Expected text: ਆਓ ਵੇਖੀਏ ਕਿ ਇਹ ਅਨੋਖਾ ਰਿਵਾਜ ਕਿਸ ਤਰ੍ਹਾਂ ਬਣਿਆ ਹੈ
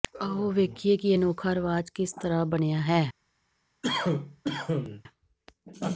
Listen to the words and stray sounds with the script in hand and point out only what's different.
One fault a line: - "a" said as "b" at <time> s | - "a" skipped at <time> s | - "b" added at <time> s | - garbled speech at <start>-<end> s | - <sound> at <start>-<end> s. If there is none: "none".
- cough at 3.8-5.0 s